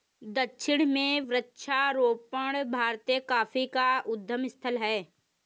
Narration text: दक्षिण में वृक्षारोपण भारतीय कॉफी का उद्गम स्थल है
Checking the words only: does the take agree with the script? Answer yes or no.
yes